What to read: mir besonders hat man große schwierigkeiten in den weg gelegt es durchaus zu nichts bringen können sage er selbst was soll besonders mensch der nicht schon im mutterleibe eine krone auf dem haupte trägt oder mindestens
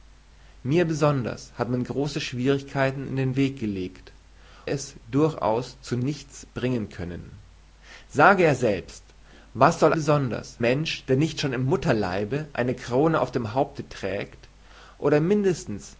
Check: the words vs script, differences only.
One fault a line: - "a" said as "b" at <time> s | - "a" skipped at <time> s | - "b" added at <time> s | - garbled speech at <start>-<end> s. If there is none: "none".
none